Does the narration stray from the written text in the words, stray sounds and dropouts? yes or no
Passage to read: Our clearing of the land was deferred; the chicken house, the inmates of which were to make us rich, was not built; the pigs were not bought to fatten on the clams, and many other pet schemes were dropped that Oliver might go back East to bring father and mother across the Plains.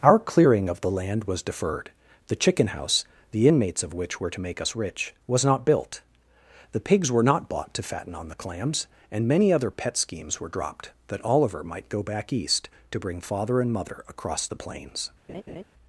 yes